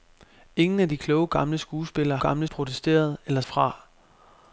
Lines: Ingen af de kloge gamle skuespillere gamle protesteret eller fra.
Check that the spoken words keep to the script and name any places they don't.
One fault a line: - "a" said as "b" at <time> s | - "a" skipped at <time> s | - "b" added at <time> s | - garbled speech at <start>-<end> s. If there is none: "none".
none